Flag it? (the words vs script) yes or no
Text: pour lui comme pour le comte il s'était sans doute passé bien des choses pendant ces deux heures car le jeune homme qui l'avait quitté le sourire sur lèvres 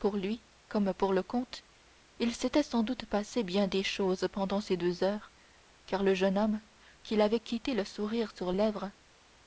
no